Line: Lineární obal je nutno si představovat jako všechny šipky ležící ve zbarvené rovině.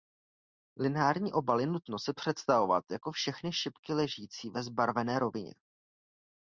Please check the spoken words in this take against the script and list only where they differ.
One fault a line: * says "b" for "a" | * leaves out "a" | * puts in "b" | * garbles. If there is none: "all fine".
all fine